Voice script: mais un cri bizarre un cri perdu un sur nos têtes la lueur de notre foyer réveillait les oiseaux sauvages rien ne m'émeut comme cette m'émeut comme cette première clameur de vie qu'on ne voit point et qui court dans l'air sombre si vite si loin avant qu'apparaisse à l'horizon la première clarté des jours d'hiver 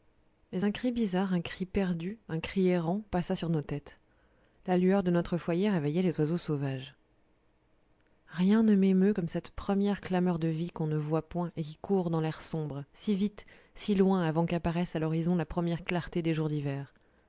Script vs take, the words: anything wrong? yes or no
yes